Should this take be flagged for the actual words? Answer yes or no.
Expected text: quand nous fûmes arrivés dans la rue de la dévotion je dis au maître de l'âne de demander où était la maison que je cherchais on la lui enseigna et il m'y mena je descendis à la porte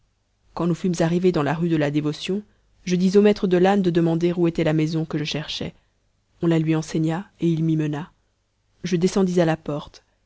no